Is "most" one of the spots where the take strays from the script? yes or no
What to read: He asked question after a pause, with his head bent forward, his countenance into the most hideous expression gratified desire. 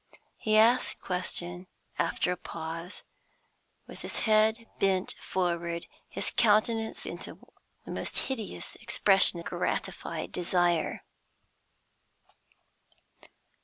no